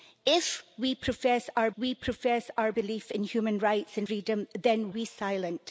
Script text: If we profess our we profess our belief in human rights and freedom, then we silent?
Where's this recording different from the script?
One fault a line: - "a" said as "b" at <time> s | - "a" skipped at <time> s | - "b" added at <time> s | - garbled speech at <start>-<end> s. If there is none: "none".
none